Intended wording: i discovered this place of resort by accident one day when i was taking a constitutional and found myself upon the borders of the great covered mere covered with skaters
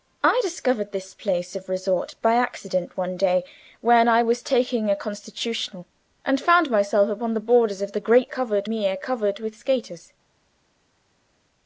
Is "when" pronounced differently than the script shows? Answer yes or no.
no